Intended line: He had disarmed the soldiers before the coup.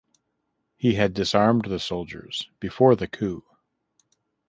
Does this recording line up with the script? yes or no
yes